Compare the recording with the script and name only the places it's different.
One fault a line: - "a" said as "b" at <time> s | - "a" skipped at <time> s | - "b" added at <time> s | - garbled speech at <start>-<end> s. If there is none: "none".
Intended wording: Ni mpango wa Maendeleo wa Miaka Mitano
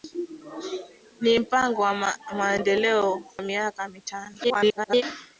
- "wa" skipped at 3.2 s
- garbled speech at 4.4-5.0 s